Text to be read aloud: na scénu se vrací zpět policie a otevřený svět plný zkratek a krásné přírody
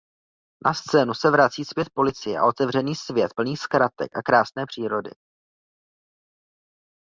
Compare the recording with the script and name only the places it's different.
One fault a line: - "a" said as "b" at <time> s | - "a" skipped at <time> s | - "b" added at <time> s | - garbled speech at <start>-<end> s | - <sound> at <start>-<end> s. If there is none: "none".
none